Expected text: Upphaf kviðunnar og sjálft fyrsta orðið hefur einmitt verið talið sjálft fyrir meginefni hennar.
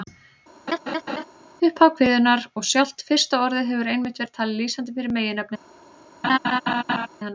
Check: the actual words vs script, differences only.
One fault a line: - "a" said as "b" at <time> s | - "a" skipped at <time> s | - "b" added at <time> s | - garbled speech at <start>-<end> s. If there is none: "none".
- "sjálft" said as "lýsandi" at 4.6 s